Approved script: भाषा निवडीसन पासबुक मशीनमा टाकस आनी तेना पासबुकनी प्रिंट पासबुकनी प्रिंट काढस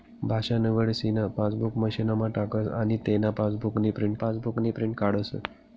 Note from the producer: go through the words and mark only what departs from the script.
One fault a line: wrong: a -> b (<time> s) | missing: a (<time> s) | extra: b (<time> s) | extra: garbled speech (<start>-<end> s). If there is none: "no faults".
no faults